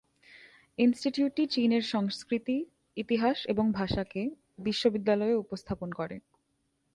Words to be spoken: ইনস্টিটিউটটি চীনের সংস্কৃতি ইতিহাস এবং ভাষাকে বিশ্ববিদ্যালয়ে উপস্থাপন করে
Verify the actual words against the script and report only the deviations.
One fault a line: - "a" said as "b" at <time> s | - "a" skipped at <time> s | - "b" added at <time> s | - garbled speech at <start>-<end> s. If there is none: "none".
none